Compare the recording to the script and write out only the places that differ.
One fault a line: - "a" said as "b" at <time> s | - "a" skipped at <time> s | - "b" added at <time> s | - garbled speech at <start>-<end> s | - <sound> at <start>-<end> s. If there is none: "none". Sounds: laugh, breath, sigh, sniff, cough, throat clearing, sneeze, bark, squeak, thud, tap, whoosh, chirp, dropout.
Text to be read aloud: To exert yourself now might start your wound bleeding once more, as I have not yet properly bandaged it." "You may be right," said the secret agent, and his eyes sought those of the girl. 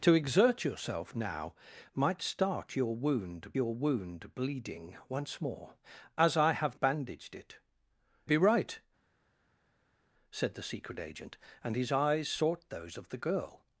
- "your wound" added at 3.5 s
- "not yet properly" skipped at 6.8 s
- "You may" skipped at 7.6 s